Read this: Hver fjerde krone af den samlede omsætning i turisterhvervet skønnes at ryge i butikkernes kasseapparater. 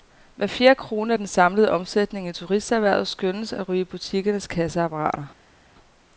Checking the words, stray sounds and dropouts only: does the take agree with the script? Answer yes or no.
yes